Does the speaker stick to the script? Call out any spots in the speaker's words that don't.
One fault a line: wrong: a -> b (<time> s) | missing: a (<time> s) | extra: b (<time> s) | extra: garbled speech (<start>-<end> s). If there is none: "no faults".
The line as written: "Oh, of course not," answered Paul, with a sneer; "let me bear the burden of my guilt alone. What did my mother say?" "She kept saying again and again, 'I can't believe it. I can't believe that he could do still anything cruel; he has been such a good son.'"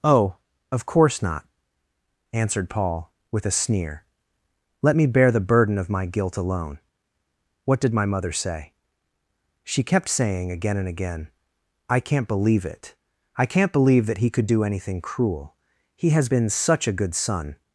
missing: still (14.6 s)